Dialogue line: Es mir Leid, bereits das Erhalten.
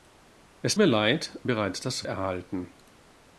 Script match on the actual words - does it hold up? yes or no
yes